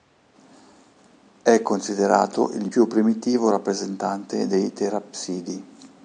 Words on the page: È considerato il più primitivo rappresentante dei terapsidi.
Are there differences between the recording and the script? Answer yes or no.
no